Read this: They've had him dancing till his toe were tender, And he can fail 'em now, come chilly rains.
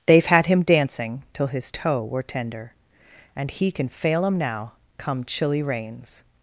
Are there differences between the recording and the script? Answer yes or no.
no